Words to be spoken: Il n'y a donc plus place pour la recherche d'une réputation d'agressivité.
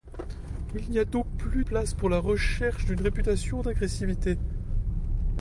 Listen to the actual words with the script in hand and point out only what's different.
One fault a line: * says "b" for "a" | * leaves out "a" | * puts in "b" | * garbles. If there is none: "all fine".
all fine